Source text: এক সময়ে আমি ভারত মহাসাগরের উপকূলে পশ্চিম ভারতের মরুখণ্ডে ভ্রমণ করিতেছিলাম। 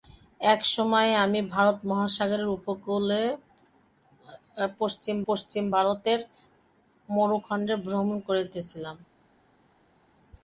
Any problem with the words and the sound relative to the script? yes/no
yes